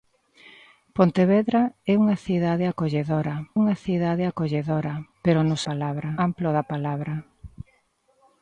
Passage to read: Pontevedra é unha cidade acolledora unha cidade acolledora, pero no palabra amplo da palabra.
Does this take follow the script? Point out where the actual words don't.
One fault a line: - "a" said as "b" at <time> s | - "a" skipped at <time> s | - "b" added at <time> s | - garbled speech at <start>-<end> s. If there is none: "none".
none